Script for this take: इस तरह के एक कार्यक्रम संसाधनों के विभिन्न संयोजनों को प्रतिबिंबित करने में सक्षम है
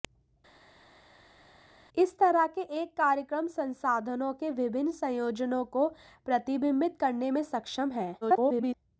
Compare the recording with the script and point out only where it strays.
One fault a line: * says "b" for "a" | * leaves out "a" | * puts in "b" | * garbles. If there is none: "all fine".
* garbles